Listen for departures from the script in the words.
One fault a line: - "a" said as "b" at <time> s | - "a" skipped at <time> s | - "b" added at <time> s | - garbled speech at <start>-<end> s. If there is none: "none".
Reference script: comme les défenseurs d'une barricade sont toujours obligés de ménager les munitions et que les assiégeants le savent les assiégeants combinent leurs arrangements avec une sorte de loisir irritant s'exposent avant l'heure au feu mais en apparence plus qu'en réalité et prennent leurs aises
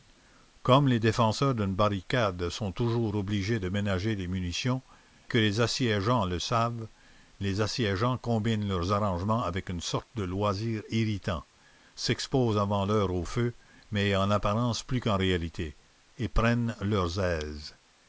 - "et" skipped at 4.8 s